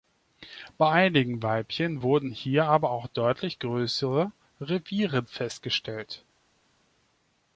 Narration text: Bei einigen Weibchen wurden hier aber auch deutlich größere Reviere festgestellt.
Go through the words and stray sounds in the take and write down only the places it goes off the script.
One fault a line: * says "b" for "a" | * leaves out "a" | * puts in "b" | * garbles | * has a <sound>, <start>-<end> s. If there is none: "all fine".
all fine